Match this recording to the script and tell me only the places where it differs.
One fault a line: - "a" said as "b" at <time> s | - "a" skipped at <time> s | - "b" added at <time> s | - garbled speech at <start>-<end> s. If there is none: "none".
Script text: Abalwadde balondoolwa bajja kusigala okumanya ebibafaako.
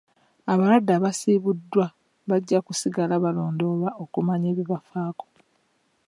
- "balondoolwa" said as "abasiibuddwa" at 0.9 s
- "balondoolwa" added at 3.2 s